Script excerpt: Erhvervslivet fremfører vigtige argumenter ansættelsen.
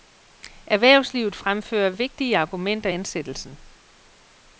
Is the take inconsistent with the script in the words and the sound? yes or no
no